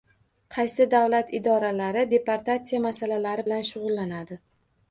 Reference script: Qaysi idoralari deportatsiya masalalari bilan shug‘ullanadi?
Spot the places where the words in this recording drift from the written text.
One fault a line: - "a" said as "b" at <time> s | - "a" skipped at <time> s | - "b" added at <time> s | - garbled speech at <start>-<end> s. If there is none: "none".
- "davlat" added at 0.9 s